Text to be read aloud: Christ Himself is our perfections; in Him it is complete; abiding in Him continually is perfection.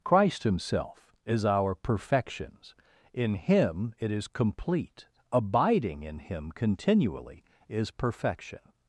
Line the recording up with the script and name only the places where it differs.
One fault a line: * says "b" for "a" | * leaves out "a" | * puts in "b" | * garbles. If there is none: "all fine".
all fine